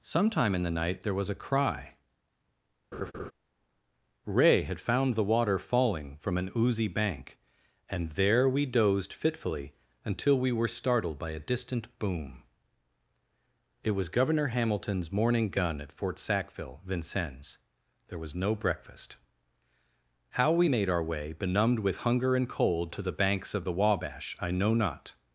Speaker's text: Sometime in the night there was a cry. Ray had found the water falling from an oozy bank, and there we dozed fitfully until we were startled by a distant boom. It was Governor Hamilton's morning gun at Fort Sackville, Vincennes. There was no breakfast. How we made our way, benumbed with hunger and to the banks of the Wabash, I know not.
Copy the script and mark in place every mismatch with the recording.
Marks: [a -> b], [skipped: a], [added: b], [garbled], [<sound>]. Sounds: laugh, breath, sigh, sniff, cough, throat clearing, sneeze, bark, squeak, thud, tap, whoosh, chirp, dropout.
Sometime in the night there was a cry. [laugh] Ray had found the water falling from an oozy bank, and there we dozed fitfully until we were startled by a distant boom. It was Governor Hamilton's morning gun at Fort Sackville, Vincennes. There was no breakfast. How we made our way, benumbed with hunger and [added: cold] to the banks of the Wabash, I know not.